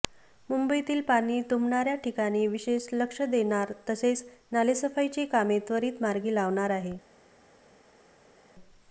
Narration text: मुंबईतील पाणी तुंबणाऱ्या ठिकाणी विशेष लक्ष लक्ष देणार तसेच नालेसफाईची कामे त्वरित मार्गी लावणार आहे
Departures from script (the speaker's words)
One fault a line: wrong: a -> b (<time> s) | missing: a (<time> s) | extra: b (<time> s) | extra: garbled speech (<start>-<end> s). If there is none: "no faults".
missing: लक्ष (3.2 s)